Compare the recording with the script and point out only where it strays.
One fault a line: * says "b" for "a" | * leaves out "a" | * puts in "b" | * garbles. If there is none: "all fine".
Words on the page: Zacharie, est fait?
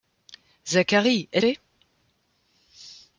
all fine